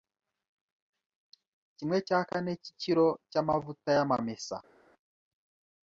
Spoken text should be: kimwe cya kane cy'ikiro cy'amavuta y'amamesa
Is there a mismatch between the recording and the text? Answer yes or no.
no